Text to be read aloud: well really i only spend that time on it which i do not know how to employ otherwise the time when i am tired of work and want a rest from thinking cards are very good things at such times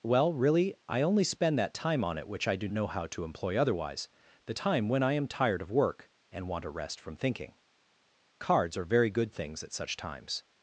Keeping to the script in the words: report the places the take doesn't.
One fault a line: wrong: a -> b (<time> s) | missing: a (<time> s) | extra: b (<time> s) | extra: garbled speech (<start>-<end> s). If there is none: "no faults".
missing: not (2.7 s)